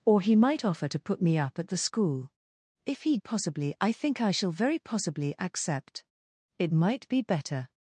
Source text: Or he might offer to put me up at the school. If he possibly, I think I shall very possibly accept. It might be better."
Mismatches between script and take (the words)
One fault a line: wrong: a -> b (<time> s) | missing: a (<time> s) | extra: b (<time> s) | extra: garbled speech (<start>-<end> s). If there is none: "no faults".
no faults